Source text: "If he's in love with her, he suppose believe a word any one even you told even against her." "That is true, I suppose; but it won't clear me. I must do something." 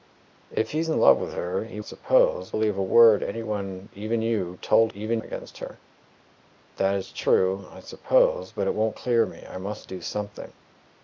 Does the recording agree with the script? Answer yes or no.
yes